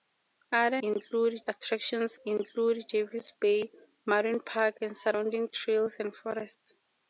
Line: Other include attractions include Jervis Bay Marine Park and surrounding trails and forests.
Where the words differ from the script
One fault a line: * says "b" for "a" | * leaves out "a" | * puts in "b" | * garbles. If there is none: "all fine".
all fine